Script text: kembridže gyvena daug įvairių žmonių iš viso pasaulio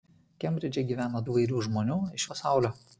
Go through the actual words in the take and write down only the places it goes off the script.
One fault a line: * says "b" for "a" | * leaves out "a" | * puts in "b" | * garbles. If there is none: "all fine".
* leaves out "daug"
* leaves out "viso"